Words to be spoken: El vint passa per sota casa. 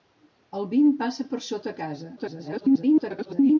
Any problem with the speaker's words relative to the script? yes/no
yes